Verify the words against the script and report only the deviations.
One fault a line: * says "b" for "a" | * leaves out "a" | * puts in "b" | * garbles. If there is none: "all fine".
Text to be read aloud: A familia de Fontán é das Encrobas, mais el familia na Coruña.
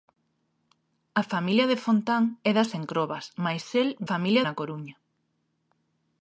all fine